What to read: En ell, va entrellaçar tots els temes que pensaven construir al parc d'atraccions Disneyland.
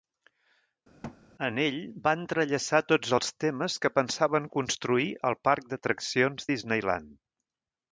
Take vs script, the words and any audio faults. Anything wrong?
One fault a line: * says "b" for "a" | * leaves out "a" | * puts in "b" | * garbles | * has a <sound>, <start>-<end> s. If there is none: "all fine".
* has a thud, 1.0-1.2 s